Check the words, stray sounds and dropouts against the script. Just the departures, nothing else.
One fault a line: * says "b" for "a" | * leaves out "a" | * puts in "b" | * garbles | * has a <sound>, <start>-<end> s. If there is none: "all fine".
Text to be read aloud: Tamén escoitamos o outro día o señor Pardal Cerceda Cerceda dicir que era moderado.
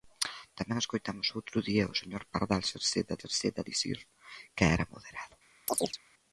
* has a chirp, 5.7-6.0 s